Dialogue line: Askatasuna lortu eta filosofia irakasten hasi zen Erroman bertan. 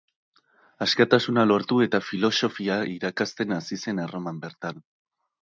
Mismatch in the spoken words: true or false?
false